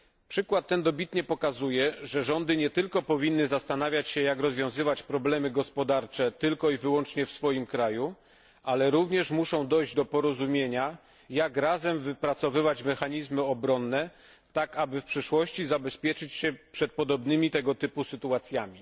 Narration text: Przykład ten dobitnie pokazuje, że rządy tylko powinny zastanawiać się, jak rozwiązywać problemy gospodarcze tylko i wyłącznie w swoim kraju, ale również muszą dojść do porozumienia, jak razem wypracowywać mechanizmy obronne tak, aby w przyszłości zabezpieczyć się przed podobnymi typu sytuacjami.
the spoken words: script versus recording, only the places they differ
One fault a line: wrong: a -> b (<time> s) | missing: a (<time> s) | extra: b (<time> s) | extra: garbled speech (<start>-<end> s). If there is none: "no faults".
extra: nie (2.6 s)
extra: tego (17.5 s)